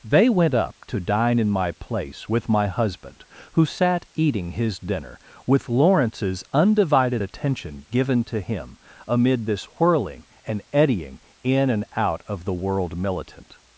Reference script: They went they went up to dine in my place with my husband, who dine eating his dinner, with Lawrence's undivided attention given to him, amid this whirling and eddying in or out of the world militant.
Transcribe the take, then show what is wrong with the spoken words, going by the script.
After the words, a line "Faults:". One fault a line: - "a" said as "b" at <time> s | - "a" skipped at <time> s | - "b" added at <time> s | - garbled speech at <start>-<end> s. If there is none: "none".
They went up to dine in my place with my husband, who sat eating his dinner, with Lawrence's undivided attention given to him, amid this whirling and eddying in and out of the world militant.
Faults:
- "they went" skipped at 0.6 s
- "dine" said as "sat" at 3.6 s
- "or" said as "and" at 11.7 s